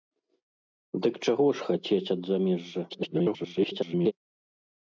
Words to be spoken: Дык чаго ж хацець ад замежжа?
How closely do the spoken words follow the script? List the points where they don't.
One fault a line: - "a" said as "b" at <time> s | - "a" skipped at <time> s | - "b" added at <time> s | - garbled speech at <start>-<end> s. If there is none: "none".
- garbled speech at 2.9-4.1 s